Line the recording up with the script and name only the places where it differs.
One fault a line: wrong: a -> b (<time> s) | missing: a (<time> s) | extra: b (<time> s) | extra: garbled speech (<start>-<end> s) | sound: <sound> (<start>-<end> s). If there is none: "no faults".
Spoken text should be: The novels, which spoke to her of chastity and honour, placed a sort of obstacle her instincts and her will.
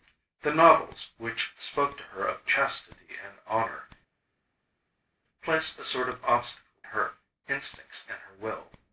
no faults